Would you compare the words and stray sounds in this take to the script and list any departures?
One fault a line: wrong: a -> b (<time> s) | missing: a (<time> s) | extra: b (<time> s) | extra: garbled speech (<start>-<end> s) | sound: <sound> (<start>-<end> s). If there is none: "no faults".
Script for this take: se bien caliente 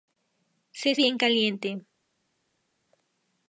no faults